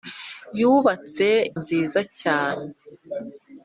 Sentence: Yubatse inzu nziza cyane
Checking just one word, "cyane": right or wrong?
right